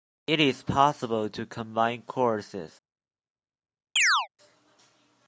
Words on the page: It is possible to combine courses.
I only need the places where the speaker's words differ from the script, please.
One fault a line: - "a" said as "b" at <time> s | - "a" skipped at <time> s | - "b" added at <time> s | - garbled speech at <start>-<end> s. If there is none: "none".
none